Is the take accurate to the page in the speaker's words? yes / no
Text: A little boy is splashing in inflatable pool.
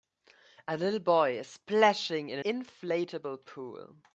yes